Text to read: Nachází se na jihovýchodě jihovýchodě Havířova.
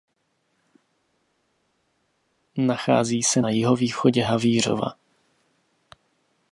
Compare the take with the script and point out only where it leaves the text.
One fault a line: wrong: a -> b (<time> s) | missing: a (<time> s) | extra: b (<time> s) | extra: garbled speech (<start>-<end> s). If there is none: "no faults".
missing: jihovýchodě (4.2 s)